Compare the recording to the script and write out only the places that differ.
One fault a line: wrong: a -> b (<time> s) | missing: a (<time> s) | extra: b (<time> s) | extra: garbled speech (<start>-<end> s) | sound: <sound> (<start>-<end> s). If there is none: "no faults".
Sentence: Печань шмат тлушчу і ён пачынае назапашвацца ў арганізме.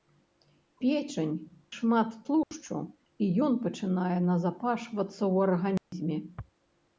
sound: dropout (2.4-2.5 s)
sound: dropout (5.8-5.9 s)